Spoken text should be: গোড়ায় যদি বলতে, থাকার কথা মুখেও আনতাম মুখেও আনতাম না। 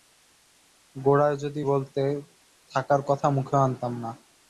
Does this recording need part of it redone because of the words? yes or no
yes